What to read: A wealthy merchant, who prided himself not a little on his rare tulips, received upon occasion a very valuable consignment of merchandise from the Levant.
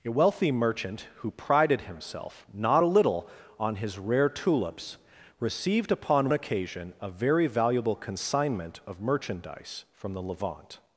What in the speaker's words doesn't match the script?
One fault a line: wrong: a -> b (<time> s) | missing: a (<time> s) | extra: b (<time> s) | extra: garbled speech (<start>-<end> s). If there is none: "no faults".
no faults